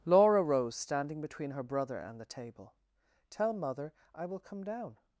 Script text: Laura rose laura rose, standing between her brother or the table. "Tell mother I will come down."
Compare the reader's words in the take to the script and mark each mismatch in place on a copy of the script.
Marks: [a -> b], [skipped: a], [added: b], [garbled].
Laura rose [skipped: laura rose,] standing between her brother [or -> and] the table. "Tell mother I will come down."